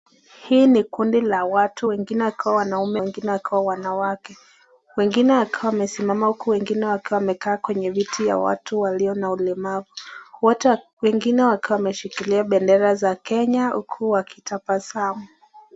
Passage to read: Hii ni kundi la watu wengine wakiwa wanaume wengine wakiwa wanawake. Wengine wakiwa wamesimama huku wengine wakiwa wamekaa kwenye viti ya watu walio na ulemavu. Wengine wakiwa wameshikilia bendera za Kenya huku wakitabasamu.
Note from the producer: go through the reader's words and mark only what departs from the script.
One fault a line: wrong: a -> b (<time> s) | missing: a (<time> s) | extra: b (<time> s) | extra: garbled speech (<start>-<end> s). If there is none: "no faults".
no faults